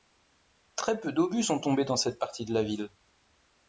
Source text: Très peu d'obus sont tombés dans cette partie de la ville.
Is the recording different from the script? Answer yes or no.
no